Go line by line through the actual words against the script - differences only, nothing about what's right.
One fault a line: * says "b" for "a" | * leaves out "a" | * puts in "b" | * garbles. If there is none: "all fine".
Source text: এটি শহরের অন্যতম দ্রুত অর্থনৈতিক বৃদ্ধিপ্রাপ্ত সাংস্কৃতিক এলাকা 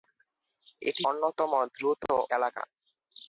* leaves out "শহরের"
* leaves out "অর্থনৈতিক বৃদ্ধিপ্রাপ্ত সাংস্কৃতিক"